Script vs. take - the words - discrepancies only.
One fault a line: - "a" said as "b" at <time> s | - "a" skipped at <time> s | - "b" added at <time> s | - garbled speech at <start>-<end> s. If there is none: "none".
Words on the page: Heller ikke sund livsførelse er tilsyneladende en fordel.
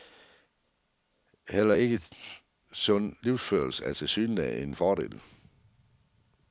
none